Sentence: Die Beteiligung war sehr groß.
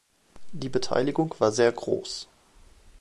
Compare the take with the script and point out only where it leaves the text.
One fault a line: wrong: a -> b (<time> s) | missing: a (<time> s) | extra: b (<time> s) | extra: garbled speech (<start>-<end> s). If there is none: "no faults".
no faults